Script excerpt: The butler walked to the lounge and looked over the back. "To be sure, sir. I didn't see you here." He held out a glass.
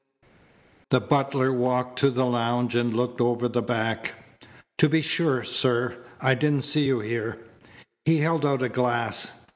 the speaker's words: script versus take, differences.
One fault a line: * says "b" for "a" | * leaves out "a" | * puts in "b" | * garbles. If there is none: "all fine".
all fine